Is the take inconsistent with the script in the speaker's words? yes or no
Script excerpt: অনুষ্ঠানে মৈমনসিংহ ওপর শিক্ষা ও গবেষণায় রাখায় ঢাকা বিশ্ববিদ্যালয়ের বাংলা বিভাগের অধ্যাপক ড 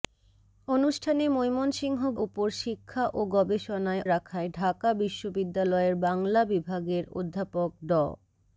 no